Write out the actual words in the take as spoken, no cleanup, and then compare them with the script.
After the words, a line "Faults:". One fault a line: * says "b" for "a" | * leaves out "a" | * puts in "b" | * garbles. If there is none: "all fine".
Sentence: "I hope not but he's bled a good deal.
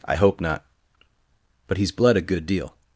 "I hope not but he's bled a good deal.
Faults:
all fine